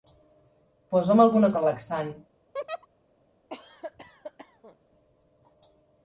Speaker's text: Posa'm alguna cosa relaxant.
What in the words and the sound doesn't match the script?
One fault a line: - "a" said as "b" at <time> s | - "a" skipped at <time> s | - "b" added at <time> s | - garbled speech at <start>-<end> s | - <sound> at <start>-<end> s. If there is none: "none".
- "cosa" skipped at 1.5 s
- laugh at 2.5-2.9 s
- cough at 3.5-4.8 s